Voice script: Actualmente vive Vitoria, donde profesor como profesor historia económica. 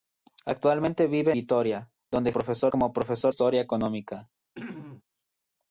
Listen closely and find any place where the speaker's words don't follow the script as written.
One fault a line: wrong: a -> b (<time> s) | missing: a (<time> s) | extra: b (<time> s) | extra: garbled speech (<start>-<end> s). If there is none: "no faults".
no faults